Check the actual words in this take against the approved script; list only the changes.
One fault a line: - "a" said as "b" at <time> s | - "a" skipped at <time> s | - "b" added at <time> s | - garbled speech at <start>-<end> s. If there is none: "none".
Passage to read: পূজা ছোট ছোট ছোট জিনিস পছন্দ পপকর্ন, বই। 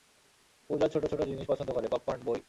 - "ছোট" skipped at 1.2 s
- "করে" added at 1.7 s